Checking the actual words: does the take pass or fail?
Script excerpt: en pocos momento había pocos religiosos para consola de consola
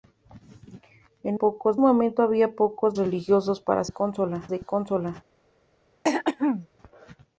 pass